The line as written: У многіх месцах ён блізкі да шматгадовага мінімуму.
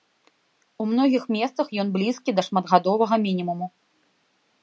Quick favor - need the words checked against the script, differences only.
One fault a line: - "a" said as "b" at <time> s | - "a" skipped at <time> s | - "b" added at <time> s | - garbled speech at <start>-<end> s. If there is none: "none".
none